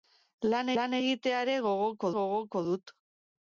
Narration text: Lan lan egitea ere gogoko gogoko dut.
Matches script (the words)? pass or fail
pass